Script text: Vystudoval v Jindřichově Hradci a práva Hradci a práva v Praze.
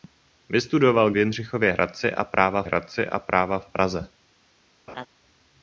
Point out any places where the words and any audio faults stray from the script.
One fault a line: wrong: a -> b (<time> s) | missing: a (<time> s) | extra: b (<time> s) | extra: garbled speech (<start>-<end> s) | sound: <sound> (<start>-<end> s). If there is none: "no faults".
sound: laugh (4.9-5.1 s)